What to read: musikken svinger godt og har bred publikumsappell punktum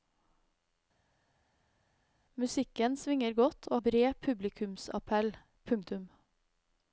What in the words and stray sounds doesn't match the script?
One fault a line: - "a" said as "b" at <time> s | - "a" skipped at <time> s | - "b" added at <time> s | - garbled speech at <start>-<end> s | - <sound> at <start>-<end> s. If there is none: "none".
- "har" skipped at 3.8 s